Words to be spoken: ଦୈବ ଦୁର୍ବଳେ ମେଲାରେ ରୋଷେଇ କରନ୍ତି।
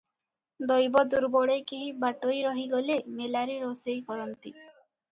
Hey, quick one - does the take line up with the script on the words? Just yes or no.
no